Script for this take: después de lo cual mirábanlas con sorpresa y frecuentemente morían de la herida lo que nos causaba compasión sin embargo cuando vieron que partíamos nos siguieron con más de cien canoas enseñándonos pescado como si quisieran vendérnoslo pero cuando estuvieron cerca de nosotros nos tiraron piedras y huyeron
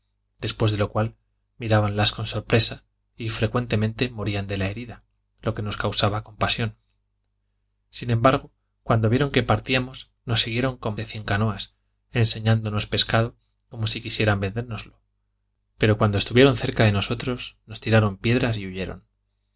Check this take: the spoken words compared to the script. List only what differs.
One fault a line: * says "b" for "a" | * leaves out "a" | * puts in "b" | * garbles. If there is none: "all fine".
* leaves out "más"